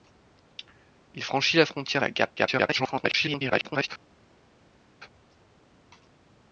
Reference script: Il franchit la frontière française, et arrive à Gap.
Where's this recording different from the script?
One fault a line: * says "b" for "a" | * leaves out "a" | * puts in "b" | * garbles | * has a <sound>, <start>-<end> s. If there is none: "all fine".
* leaves out "française et arrive"
* garbles